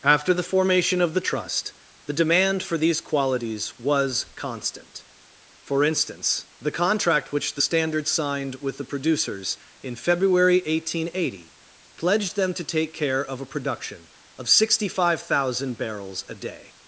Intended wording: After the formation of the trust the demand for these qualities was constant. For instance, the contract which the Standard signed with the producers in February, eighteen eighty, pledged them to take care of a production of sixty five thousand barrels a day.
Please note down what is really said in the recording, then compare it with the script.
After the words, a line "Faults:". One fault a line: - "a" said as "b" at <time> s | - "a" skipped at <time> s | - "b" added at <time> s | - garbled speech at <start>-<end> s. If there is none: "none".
After the formation of the trust the demand for these qualities was constant. For instance, the contract which the Standard signed with the producers in February, eighteen eighty, pledged them to take care of a production of sixty five thousand barrels a day.
Faults:
none